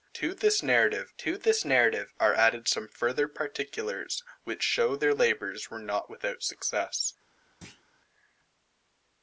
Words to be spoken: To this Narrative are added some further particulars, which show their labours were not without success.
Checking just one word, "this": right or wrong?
right